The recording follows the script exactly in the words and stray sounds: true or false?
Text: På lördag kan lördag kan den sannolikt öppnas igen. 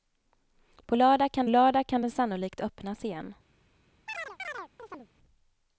false